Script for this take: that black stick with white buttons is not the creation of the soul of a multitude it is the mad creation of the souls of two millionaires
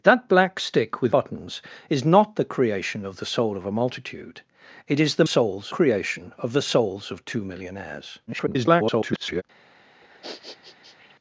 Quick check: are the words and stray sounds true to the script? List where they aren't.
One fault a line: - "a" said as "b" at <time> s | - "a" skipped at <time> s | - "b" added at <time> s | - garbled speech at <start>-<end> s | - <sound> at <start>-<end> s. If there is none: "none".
- "white" skipped at 1.1 s
- "mad" said as "souls" at 5.2 s
- garbled speech at 8.3-9.4 s
- sniff at 10.0-11.2 s